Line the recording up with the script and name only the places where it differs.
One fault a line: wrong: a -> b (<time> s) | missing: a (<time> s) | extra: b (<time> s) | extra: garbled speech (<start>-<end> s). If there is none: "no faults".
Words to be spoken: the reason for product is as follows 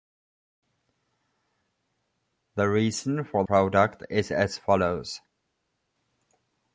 no faults